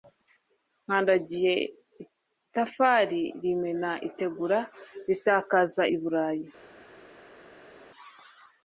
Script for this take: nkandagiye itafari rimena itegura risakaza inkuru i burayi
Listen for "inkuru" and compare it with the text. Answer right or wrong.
wrong